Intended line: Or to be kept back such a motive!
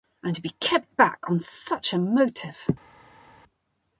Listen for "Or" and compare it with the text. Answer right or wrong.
wrong